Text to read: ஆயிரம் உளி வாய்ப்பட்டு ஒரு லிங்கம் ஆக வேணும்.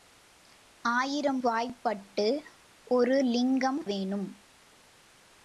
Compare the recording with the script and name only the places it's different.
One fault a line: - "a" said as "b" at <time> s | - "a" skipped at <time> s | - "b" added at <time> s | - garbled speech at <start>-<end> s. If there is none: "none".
- "உளி" skipped at 1.4 s
- "ஆக" skipped at 3.9 s